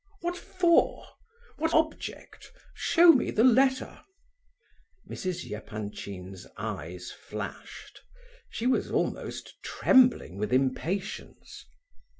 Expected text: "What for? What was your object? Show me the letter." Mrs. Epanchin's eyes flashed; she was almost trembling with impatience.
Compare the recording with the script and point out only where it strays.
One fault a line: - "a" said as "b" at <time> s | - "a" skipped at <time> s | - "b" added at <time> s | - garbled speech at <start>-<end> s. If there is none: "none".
- "was your" skipped at 1.8 s